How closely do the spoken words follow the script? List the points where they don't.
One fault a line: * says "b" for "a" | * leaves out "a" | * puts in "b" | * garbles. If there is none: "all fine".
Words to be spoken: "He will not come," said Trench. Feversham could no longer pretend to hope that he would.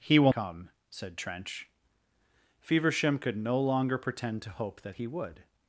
* leaves out "not"